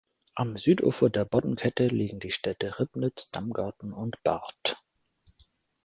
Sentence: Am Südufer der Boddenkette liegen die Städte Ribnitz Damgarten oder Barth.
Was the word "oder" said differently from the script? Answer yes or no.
yes